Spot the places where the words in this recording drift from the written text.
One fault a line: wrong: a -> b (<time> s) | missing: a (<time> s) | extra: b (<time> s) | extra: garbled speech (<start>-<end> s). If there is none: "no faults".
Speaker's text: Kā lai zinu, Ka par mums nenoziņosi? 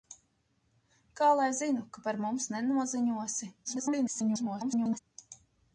extra: garbled speech (3.6-5.0 s)